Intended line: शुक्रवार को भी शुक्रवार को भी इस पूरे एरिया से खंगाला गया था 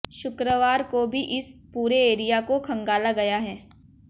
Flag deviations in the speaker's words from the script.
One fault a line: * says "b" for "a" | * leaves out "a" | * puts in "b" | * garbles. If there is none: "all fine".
* leaves out "शुक्रवार को भी"
* says "को" for "से"
* says "है" for "था"